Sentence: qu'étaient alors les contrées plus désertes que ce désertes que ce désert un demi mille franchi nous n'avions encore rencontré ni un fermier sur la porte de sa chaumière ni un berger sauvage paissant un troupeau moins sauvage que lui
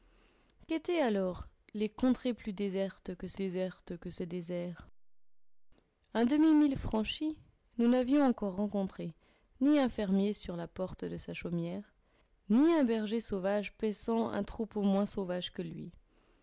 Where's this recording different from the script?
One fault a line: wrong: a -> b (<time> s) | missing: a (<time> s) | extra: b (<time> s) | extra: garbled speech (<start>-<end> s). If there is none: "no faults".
no faults